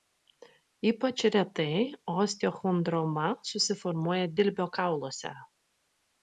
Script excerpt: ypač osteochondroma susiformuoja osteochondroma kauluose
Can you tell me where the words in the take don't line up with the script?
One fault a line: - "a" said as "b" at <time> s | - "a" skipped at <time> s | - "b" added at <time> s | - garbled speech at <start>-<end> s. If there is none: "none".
- "retai" added at 1.4 s
- "osteochondroma" said as "dilbio" at 4.4 s